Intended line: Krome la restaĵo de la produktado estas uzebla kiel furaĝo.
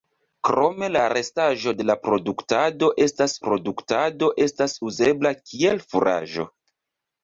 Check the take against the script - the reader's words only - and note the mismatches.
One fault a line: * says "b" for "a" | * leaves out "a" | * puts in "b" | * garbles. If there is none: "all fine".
* puts in "produktado estas"